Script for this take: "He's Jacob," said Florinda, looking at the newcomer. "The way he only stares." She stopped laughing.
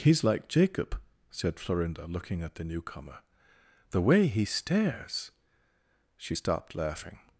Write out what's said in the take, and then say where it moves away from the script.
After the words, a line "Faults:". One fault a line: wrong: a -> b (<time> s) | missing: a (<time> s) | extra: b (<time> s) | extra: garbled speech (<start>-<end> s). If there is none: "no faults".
"He's like Jacob," said Florinda, looking at the newcomer. "The way he stares." She stopped laughing.
Faults:
extra: like (0.2 s)
missing: only (4.5 s)